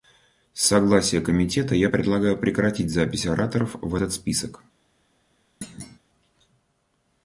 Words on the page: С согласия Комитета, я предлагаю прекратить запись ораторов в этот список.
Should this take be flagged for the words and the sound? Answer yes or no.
yes